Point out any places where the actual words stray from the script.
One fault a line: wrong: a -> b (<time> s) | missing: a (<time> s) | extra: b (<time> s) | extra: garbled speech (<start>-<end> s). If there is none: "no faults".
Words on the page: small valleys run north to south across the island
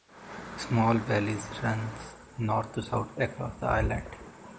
no faults